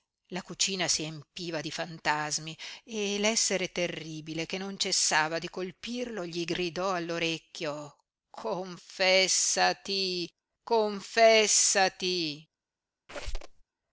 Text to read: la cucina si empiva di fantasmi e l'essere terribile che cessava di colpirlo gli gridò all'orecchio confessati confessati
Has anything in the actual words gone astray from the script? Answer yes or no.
yes